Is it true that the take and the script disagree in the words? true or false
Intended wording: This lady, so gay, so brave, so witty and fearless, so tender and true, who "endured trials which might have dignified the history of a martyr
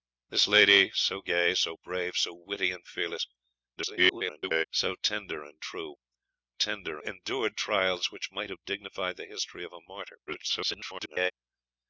true